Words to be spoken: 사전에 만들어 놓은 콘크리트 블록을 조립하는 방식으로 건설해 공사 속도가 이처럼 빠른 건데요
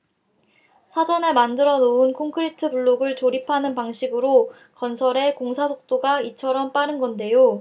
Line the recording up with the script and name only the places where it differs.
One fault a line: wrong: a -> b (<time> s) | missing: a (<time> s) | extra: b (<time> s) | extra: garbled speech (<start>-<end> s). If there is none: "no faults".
no faults